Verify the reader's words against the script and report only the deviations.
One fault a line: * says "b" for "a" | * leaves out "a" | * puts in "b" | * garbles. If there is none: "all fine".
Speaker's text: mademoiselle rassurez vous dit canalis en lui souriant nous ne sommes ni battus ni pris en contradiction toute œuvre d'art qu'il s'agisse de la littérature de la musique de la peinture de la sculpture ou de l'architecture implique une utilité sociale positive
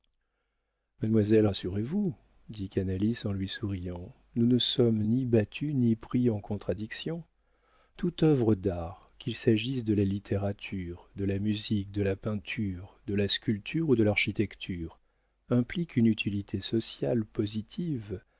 all fine